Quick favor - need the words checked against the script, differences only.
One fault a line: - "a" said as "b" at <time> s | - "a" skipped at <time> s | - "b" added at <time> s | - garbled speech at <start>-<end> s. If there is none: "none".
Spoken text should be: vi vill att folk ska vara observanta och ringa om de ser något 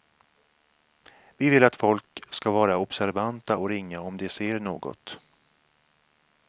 none